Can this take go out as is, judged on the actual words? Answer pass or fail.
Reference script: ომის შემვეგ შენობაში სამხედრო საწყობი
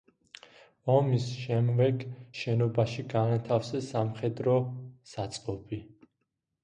fail